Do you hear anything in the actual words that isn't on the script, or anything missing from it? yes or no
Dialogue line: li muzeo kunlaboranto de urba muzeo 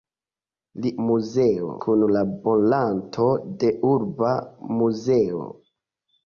no